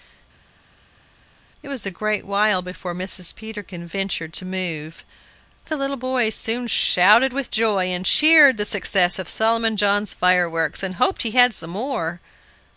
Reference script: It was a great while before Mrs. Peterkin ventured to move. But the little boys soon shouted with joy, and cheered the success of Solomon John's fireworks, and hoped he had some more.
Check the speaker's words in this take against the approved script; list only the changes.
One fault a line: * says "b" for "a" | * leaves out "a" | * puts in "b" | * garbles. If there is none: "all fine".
* leaves out "But"